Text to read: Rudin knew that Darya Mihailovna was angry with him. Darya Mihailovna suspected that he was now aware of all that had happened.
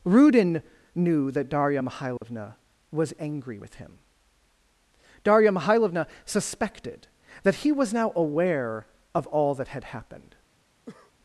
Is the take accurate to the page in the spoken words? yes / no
yes